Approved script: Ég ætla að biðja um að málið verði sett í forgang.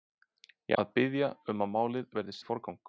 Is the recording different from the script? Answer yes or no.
yes